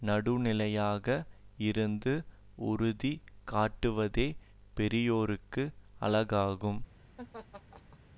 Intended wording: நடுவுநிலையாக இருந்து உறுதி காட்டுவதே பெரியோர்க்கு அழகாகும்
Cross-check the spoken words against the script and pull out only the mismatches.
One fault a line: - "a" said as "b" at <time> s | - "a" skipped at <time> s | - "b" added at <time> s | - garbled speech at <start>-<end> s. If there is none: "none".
none